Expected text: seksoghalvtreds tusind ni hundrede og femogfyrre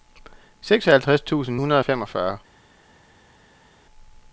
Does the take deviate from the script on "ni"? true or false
true